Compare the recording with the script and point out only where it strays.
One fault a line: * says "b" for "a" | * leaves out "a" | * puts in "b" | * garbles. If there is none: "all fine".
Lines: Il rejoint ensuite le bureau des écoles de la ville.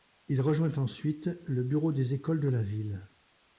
all fine